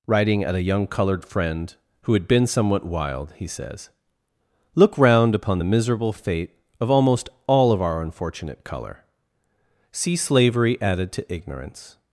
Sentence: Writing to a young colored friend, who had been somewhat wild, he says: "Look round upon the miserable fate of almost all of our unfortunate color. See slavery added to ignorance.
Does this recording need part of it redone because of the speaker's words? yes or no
yes